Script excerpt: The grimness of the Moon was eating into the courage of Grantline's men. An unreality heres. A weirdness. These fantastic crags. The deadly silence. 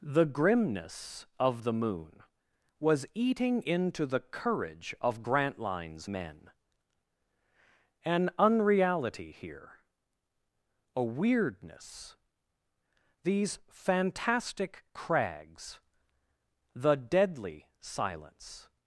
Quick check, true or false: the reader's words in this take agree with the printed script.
false